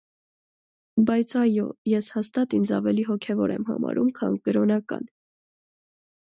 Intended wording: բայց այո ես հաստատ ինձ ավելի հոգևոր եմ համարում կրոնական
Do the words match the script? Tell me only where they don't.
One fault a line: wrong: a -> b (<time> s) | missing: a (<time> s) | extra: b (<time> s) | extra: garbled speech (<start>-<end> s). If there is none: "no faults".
extra: քան (4.2 s)